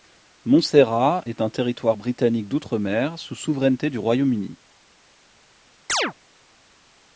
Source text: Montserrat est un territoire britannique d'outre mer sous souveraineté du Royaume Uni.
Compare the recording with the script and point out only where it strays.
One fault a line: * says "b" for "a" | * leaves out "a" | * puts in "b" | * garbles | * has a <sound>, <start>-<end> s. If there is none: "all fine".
* has a chirp, 5.9-6.1 s